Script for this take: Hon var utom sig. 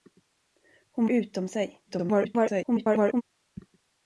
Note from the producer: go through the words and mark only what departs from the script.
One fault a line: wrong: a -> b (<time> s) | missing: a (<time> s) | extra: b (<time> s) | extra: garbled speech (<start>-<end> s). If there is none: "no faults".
missing: var (1.1 s)
extra: garbled speech (1.9-3.2 s)